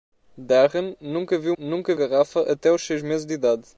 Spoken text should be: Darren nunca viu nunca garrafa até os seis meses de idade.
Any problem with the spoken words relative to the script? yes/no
no